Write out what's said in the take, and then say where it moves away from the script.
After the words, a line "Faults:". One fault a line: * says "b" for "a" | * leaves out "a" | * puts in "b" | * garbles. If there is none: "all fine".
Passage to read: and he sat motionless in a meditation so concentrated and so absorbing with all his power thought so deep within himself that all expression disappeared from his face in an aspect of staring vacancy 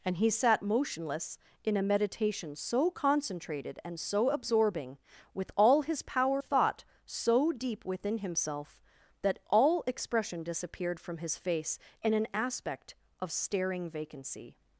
and he sat motionless in a meditation so concentrated and so absorbing with all his power thought so deep within himself that all expression disappeared from his face in an aspect of staring vacancy
Faults:
all fine